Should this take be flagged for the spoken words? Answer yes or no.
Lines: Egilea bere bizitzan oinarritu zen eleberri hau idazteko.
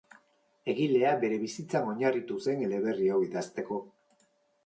no